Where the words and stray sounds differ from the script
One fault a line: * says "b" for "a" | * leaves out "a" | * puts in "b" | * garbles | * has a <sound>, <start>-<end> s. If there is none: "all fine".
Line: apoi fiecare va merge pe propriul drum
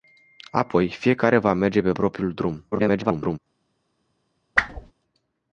* garbles
* has a whoosh, 4.5-4.9 s